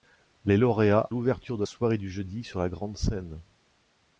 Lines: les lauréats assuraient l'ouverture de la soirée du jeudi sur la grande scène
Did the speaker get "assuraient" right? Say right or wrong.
wrong